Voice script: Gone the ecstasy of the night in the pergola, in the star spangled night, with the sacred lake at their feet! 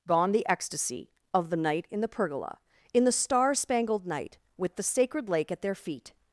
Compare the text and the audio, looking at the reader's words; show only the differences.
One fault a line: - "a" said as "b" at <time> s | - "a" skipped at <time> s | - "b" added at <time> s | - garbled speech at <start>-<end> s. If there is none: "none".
none